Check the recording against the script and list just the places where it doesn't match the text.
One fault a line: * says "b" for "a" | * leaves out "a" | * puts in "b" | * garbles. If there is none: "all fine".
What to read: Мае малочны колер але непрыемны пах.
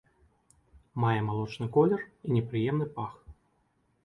* says "і" for "але"